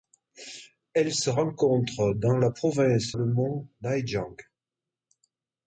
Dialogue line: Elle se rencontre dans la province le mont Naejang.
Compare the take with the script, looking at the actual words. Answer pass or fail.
pass